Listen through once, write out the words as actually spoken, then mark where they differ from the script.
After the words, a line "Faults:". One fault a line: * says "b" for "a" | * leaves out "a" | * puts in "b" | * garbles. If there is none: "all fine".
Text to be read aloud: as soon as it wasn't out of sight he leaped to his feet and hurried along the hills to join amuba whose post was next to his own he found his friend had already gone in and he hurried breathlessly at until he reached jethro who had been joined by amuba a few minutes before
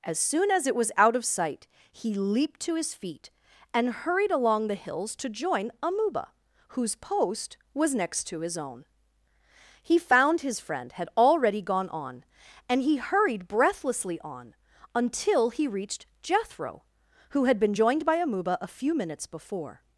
as soon as it was out of sight he leaped to his feet and hurried along the hills to join amuba whose post was next to his own he found his friend had already gone on and he hurried breathlessly on until he reached jethro who had been joined by amuba a few minutes before
Faults:
* says "was" for "wasn't"
* says "on" for "in"
* says "on" for "at"